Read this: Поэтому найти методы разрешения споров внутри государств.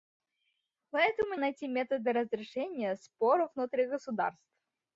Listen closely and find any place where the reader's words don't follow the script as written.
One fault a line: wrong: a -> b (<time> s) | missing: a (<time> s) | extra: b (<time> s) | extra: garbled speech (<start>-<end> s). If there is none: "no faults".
no faults